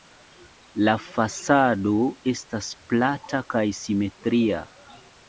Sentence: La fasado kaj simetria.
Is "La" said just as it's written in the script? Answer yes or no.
yes